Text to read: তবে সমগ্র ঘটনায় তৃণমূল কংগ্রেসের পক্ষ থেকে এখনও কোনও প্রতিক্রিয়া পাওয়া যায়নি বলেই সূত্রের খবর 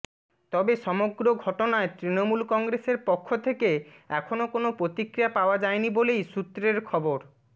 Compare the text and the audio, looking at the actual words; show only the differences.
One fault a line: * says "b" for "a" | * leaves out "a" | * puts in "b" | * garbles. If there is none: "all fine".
all fine